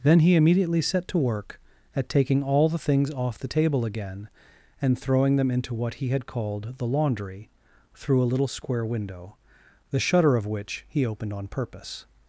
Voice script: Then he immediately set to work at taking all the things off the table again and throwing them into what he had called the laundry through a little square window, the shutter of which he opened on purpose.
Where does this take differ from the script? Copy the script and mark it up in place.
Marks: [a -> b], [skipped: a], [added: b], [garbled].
Then he immediately set to work at taking all the things off the table again and throwing them into what he had called the laundry through a little square window, the shutter of which he opened on purpose.